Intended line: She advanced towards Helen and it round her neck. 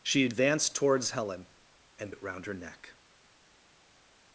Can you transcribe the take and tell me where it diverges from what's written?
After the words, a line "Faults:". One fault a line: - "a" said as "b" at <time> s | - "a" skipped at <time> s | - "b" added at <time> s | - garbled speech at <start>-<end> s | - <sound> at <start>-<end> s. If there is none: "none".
She advanced towards Helen and it round her neck.
Faults:
none